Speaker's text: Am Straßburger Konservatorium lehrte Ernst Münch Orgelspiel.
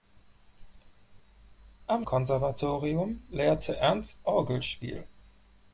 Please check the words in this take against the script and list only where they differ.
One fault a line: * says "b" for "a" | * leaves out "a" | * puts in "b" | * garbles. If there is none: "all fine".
* leaves out "Straßburger"
* leaves out "Münch"